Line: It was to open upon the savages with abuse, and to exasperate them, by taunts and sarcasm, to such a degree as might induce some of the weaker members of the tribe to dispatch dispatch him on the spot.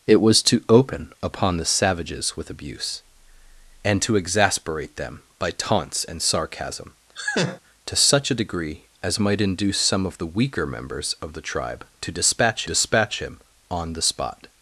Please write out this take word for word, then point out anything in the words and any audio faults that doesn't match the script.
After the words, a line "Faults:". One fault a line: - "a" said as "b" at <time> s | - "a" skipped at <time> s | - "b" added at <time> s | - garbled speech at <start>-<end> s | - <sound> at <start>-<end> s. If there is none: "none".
It was to open upon the savages with abuse, and to exasperate them, by taunts and sarcasm, to such a degree as might induce some of the weaker members of the tribe to dispatch dispatch him on the spot.
Faults:
- laugh at 7.2-7.6 s